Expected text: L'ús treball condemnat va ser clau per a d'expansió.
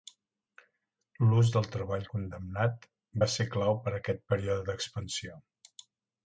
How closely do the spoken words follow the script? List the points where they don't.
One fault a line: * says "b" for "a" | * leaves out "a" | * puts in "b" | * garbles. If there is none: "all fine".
* puts in "del"
* puts in "aquest període"